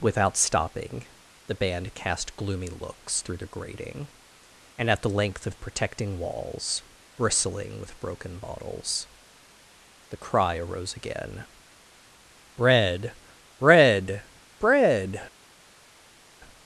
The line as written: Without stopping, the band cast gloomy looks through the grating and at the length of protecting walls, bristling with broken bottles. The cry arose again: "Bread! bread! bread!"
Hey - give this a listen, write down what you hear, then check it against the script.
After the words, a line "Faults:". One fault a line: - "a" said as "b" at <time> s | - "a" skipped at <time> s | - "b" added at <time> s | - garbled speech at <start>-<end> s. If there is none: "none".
Without stopping, the band cast gloomy looks through the grating and at the length of protecting walls, bristling with broken bottles. The cry arose again: "Bread! bread! bread!"
Faults:
none